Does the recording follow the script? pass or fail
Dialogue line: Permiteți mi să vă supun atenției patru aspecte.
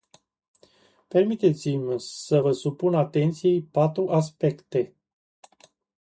pass